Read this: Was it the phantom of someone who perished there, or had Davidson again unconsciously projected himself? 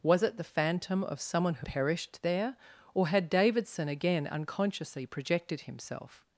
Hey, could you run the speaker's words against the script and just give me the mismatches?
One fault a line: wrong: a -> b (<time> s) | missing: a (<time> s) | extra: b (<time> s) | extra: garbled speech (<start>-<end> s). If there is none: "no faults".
no faults